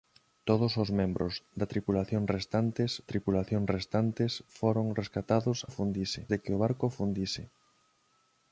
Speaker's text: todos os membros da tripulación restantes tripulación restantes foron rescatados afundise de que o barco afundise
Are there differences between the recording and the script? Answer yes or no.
no